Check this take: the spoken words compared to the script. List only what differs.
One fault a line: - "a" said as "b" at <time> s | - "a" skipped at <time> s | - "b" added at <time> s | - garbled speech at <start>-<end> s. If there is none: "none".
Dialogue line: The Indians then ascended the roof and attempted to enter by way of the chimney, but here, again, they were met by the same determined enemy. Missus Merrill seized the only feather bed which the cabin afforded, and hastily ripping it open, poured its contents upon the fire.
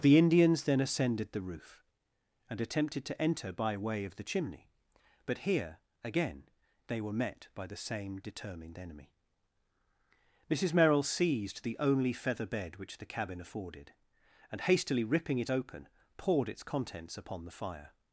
none